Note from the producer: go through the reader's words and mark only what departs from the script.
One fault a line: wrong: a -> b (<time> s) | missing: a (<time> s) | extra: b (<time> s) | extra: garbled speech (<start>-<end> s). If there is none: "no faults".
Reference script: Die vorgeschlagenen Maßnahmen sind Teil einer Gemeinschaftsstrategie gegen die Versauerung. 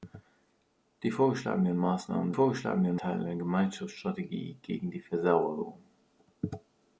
wrong: sind -> vorgeschlagenen (2.3 s)